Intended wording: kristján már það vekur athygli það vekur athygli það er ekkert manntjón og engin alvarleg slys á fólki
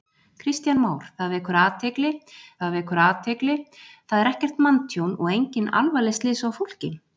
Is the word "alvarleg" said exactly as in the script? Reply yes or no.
yes